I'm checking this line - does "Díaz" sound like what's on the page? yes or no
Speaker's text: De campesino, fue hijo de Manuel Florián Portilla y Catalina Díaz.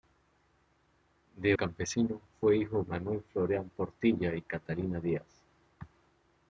yes